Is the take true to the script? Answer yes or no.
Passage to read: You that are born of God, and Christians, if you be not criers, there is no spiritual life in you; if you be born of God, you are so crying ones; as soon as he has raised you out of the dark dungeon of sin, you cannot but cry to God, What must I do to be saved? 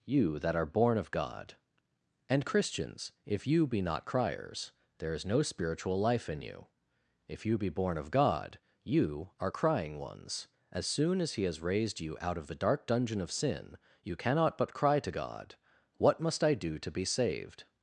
no